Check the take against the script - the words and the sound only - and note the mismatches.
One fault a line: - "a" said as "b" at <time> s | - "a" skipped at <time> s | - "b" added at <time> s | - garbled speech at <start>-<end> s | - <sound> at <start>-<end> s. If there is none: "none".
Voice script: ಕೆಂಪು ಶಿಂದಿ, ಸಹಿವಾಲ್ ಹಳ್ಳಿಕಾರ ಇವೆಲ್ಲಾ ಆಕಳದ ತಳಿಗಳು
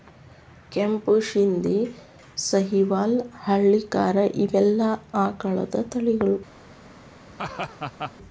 - laugh at 7.3-8.1 s